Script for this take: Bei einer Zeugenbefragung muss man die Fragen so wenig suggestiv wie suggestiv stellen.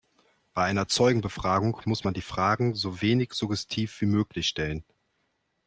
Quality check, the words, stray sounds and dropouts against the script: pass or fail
fail